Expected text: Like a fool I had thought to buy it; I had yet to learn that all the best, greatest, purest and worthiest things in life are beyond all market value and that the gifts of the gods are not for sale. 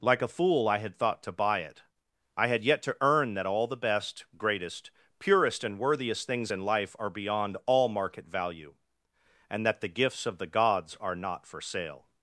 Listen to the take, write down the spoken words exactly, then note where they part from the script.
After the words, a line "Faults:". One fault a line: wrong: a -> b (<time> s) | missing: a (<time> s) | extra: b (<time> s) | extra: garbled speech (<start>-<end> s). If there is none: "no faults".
Like a fool I had thought to buy it; I had yet to earn that all the best, greatest, purest and worthiest things in life are beyond all market value and that the gifts of the gods are not for sale.
Faults:
wrong: learn -> earn (3.0 s)